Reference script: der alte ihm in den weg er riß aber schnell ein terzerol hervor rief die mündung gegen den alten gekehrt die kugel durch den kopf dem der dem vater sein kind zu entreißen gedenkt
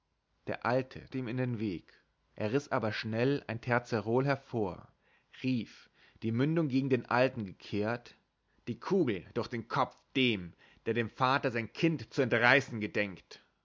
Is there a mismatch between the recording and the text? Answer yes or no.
no